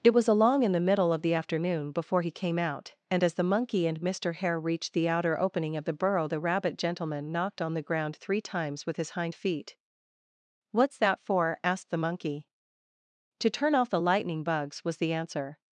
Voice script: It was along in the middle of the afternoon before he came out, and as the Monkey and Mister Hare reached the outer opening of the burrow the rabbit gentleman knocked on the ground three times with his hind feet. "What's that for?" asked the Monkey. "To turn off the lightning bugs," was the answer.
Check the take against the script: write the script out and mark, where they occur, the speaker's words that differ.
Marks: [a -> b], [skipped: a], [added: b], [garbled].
It was along in the middle of the afternoon before he came out, and as the Monkey and Mister Hare reached the outer opening of the burrow the rabbit gentleman knocked on the ground three times with his hind feet. "What's that for?" asked the Monkey. "To turn off the lightning bugs," was the answer.